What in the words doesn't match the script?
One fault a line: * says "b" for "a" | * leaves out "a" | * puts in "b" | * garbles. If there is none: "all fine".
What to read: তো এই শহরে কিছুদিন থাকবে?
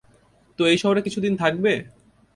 all fine